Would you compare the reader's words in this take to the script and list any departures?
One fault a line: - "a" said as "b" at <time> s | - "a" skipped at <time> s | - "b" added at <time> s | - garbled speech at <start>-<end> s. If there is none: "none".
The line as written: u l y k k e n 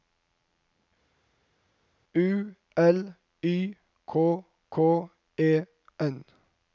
none